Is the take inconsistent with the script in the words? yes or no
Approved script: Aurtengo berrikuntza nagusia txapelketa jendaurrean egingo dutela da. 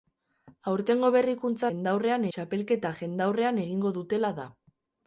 yes